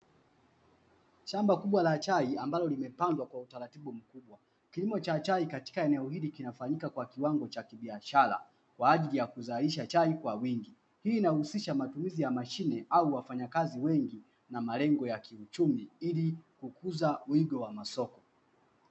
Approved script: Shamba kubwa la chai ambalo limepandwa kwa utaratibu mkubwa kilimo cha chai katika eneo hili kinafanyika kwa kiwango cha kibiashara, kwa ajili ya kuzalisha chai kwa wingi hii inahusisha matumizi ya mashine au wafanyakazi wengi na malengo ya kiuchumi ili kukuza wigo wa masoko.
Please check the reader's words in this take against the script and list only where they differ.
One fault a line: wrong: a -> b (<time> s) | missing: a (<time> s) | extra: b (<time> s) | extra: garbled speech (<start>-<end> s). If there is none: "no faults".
no faults